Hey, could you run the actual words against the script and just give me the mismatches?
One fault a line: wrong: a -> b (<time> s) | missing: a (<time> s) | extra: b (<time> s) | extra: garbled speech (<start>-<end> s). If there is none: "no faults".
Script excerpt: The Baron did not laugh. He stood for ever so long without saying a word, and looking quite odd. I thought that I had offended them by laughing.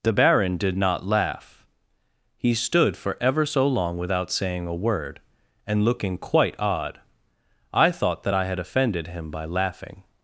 wrong: them -> him (9.1 s)